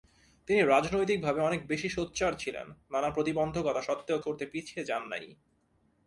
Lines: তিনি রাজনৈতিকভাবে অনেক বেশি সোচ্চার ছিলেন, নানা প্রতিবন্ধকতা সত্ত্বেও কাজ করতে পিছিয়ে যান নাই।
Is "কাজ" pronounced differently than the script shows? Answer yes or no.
yes